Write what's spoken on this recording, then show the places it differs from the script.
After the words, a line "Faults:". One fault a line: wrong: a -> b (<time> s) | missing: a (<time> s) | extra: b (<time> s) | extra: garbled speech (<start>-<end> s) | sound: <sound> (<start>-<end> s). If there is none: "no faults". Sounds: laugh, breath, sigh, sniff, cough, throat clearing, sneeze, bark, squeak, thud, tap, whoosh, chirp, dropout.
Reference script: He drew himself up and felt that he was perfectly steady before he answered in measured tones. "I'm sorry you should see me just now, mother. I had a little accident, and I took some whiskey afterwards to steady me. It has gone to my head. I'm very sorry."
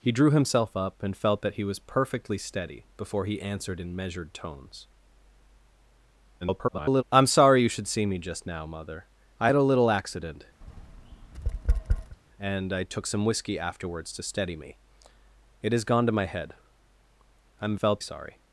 He drew himself up and felt that he was perfectly steady before he answered in measured tones. [garbled] "I'm sorry you should see me just now, mother. I had a little accident, and I took some whiskey afterwards to steady me. It has gone to my head. I'm felt sorry."
Faults:
extra: garbled speech (6.4-7.0 s)
sound: tap (10.6-12.2 s)
wrong: very -> felt (17.7 s)